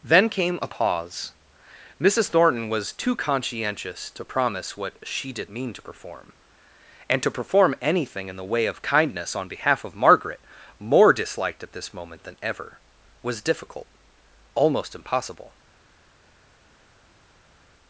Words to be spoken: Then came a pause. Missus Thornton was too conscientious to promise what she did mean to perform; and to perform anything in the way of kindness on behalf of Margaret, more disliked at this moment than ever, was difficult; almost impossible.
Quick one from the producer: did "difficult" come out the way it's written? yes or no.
yes